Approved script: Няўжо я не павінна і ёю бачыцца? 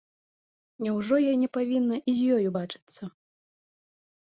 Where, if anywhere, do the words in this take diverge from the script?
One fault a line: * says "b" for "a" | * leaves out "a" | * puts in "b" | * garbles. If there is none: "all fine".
* puts in "з"